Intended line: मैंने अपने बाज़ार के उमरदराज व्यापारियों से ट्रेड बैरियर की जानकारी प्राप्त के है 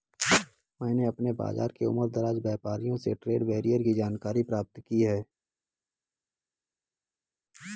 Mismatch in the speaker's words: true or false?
true